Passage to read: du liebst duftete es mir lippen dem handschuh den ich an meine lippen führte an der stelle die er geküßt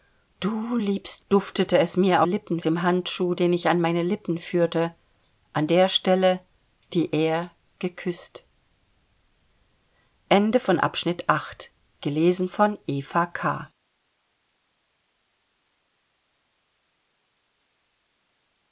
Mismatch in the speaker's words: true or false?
false